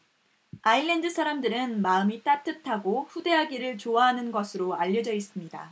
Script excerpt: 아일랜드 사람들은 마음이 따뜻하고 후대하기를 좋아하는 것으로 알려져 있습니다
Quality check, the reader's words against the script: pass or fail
pass